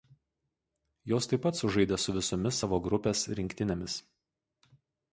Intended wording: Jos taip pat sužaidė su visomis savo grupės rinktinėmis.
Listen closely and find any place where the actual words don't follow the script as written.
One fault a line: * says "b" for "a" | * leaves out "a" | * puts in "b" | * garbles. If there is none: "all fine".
all fine